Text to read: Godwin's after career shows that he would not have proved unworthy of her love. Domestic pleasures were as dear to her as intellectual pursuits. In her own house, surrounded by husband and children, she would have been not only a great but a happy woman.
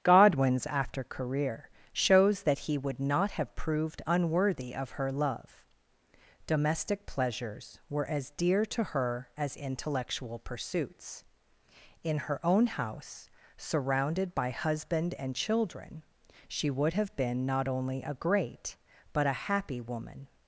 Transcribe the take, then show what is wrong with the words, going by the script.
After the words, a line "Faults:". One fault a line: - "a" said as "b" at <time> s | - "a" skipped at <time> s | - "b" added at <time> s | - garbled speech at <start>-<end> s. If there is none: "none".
Godwin's after career shows that he would not have proved unworthy of her love. Domestic pleasures were as dear to her as intellectual pursuits. In her own house, surrounded by husband and children, she would have been not only a great but a happy woman.
Faults:
none